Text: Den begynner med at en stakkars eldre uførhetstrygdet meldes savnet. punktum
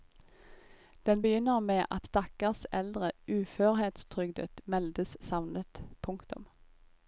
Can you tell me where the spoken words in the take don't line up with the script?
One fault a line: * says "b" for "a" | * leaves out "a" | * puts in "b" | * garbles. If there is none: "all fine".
* leaves out "en"